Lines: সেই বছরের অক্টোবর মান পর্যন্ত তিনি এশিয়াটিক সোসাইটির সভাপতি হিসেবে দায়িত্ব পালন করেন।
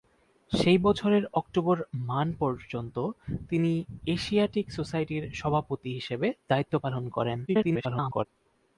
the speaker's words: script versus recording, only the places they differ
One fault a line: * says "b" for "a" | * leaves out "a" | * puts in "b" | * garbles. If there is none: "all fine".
* garbles